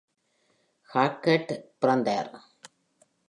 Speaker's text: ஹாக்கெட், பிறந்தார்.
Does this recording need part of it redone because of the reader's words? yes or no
no